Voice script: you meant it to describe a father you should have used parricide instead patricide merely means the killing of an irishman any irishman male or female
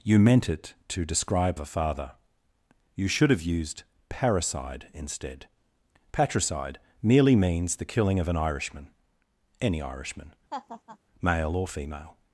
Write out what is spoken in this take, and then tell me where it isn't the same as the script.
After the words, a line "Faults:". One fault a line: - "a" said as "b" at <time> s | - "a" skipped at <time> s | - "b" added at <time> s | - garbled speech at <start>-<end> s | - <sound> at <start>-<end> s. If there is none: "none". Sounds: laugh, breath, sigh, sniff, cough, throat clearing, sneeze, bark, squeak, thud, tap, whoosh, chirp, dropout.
you meant it to describe a father you should have used parricide instead patricide merely means the killing of an irishman any irishman male or female
Faults:
- laugh at 10.5-11.0 s